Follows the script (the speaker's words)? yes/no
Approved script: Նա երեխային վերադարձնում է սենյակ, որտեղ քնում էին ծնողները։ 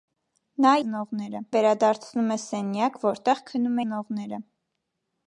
no